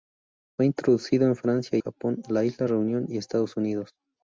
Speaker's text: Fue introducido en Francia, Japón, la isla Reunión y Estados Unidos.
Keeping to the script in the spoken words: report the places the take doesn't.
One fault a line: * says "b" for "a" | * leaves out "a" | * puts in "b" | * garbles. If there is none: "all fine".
all fine